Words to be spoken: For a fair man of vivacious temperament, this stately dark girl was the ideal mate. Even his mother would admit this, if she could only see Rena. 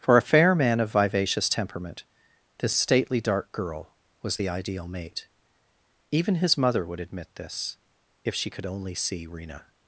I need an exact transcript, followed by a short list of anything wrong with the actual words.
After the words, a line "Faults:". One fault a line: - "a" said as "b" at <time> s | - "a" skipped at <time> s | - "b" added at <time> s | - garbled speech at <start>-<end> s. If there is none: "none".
For a fair man of vivacious temperament, this stately dark girl was the ideal mate. Even his mother would admit this, if she could only see Rena.
Faults:
none